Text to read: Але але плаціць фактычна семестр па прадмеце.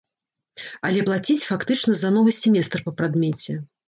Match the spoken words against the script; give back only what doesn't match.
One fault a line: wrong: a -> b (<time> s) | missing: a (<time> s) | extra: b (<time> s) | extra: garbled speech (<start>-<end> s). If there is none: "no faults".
missing: але (1.0 s)
extra: за новы (2.0 s)